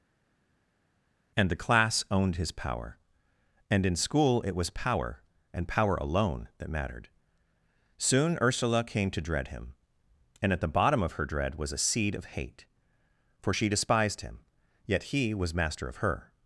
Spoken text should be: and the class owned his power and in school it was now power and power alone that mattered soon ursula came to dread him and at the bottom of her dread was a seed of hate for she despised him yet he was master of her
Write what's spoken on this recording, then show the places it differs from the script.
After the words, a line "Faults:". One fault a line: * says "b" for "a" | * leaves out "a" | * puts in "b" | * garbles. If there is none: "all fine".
and the class owned his power and in school it was power and power alone that mattered soon ursula came to dread him and at the bottom of her dread was a seed of hate for she despised him yet he was master of her
Faults:
* leaves out "now"